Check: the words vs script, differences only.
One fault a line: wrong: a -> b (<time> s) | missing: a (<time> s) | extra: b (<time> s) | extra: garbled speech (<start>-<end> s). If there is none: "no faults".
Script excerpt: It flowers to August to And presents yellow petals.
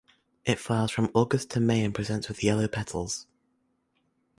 wrong: to -> from (0.9 s)
extra: May (1.6 s)
extra: with (2.3 s)